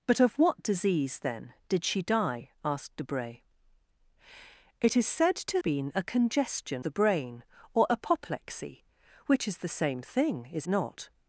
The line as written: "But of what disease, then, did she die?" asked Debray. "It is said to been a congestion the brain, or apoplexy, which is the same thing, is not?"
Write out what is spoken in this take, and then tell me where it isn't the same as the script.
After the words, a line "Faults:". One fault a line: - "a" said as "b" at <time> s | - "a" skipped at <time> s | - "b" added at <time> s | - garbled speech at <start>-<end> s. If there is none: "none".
"But of what disease, then, did she die?" asked Debray. "It is said to been a congestion the brain, or apoplexy, which is the same thing, is not?"
Faults:
none